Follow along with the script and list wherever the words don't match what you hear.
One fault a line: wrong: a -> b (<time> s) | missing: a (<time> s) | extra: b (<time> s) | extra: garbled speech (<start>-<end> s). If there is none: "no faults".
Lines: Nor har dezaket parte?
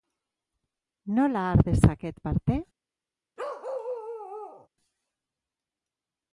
wrong: Nor -> Nola (1.0 s)